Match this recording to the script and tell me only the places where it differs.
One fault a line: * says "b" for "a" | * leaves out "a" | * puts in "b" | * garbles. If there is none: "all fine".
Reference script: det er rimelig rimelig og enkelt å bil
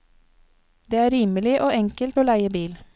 * leaves out "rimelig"
* puts in "leie"